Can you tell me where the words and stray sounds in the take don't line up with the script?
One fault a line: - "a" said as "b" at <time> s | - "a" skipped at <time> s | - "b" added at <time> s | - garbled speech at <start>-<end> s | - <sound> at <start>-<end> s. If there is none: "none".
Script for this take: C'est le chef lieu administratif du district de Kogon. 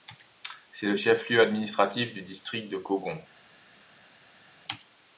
none